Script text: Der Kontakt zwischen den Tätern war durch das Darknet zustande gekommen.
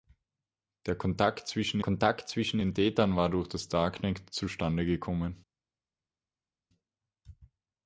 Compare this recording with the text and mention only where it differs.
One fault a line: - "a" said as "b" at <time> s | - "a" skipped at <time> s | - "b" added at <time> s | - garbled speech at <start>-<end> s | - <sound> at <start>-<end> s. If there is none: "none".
- "Kontakt zwischen" added at 1.8 s